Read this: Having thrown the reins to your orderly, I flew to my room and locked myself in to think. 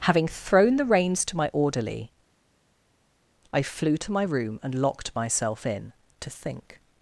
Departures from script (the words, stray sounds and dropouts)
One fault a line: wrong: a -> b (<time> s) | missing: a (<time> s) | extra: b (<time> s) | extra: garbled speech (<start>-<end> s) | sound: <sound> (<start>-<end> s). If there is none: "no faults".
wrong: your -> my (1.4 s)